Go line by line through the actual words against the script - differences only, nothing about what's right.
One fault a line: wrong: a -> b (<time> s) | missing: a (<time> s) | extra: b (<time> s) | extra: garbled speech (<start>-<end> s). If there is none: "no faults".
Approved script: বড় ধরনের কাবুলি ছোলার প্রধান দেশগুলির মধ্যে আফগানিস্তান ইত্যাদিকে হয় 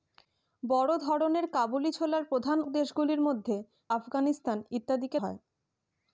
no faults